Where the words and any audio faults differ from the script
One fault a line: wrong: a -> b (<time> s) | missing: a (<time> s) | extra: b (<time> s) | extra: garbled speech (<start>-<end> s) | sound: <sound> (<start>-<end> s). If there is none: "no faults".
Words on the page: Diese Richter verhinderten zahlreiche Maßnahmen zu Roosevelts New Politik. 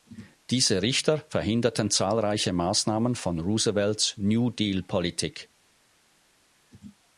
wrong: zu -> von (3.2 s)
extra: Deal (4.5 s)